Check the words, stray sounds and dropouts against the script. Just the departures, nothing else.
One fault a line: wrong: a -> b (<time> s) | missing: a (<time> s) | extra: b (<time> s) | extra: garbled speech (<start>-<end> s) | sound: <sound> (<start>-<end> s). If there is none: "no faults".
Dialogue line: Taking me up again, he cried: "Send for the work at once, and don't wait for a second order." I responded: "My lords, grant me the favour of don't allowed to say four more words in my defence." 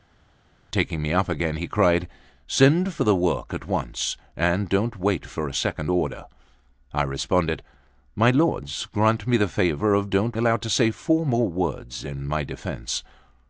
no faults